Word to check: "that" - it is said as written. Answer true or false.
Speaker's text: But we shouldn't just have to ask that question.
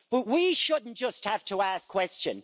false